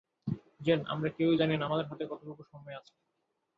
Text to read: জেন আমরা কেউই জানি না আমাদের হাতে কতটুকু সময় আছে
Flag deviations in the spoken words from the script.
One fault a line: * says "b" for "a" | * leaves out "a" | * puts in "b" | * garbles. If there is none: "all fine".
all fine